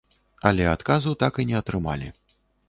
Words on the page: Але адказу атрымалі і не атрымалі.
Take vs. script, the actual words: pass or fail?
fail